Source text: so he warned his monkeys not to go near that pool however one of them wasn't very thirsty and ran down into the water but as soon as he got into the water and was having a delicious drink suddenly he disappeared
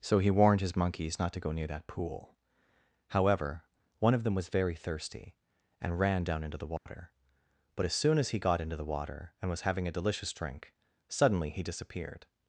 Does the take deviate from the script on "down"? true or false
false